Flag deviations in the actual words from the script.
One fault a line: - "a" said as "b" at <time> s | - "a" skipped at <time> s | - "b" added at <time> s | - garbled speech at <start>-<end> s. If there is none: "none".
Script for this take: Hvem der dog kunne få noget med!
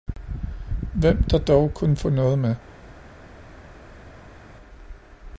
none